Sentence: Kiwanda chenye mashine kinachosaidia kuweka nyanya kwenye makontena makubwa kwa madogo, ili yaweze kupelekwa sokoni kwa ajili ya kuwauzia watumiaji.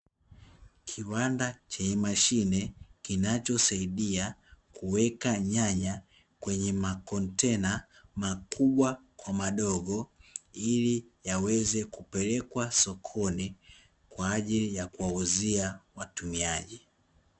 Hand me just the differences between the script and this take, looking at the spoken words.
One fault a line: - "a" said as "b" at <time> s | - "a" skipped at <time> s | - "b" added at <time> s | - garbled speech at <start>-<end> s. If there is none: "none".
none